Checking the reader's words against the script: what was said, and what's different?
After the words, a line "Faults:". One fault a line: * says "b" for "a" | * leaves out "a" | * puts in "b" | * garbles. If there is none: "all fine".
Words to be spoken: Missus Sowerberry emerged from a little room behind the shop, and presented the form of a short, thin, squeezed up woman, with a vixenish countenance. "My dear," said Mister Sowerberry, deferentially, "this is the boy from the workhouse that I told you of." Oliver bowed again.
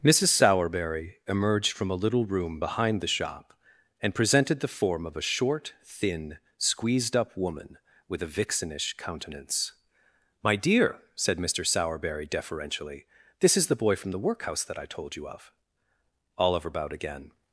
Missus Sowerberry emerged from a little room behind the shop, and presented the form of a short, thin, squeezed up woman, with a vixenish countenance. "My dear," said Mister Sowerberry, deferentially, "this is the boy from the workhouse that I told you of." Oliver bowed again.
Faults:
all fine